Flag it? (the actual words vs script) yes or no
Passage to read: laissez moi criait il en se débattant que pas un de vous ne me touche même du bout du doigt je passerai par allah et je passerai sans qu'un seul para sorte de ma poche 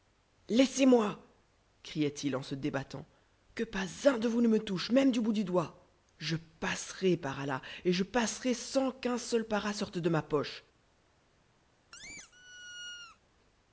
no